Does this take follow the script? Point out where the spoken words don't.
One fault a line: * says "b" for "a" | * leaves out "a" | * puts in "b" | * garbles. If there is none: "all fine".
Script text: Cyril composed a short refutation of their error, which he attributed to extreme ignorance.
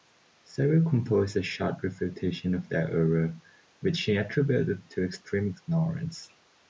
all fine